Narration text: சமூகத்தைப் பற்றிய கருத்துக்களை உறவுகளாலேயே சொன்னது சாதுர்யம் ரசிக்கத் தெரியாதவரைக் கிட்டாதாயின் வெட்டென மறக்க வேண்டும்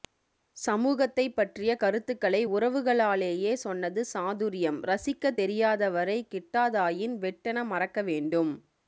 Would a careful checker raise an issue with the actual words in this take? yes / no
no